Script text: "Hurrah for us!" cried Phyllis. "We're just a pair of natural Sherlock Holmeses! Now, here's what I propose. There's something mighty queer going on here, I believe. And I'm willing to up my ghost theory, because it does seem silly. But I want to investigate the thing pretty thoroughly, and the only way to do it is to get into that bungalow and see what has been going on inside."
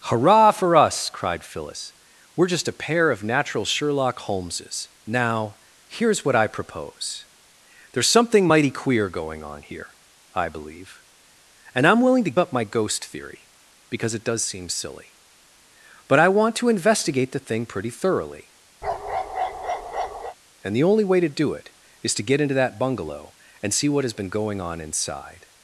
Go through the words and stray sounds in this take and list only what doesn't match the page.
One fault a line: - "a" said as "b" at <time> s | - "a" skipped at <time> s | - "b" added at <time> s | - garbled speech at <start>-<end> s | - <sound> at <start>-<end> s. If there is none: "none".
- bark at 18.8-20.4 s